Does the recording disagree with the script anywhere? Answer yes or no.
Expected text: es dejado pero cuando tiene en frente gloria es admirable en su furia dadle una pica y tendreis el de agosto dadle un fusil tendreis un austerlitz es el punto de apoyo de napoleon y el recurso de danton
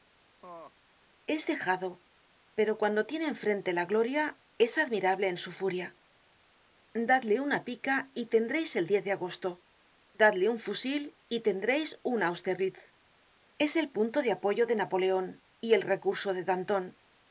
yes